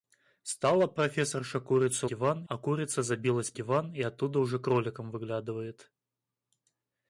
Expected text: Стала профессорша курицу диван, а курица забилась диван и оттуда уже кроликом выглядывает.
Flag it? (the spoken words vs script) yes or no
no